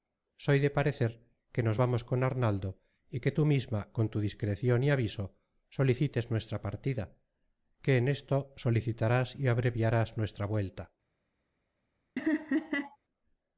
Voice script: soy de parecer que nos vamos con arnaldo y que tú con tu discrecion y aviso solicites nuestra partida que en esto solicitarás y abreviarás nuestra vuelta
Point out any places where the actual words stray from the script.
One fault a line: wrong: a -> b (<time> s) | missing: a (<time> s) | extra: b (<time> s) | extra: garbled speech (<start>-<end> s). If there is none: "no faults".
extra: misma (3.4 s)